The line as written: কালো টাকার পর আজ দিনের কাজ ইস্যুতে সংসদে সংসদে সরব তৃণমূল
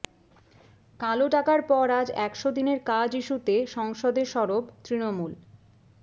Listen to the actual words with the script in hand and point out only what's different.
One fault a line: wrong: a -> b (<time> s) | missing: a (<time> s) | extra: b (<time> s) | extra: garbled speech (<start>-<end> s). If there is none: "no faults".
extra: একশো (2.3 s)
missing: সংসদে (4.2 s)